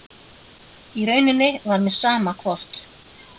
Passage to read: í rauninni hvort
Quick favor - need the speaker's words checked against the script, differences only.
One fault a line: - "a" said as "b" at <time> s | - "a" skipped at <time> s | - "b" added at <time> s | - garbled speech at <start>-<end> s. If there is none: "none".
- "var mér sama" added at 1.7 s